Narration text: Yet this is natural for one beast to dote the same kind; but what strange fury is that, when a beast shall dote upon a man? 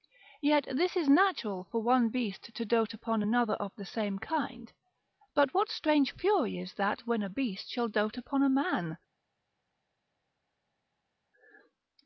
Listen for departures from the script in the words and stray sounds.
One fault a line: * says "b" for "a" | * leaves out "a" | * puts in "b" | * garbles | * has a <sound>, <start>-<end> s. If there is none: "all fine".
* puts in "upon another of"